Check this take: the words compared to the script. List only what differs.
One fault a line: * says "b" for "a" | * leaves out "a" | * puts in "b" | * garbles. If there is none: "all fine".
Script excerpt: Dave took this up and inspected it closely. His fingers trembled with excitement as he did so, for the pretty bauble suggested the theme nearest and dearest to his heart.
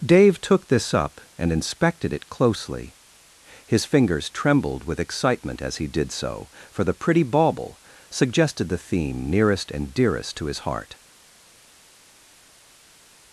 all fine